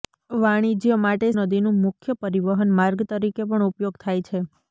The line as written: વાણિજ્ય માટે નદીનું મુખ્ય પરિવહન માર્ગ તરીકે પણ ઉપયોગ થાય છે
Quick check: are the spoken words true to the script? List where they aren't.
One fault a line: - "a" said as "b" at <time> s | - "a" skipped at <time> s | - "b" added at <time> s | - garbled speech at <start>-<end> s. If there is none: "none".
none